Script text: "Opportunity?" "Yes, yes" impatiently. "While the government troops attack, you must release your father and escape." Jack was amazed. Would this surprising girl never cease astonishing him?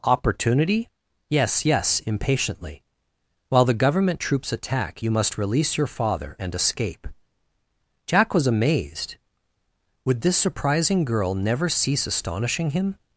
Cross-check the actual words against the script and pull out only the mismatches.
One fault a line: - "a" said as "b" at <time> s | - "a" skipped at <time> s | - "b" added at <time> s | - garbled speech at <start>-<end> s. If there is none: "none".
none